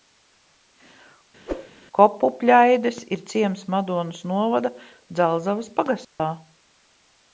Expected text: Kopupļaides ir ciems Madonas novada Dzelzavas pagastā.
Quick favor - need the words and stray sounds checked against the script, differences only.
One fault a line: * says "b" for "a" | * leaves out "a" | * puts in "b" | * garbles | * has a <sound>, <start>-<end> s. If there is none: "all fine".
* has a whoosh, 1.5-1.7 s
* has a dropout, 6.0-6.2 s